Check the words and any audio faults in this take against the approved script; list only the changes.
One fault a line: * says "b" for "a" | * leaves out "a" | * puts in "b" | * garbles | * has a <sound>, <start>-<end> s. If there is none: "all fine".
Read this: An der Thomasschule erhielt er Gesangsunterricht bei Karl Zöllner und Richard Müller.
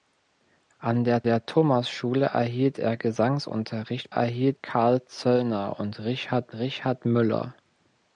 * puts in "der"
* says "erhielt" for "bei"
* puts in "Richard"